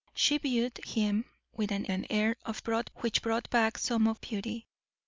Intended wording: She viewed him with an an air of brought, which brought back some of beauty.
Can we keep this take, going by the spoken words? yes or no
yes